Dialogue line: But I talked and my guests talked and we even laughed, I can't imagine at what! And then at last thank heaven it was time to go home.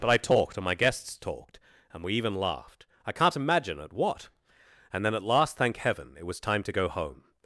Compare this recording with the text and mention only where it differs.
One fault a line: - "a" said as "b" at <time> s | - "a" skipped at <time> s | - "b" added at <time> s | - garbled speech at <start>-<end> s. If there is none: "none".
none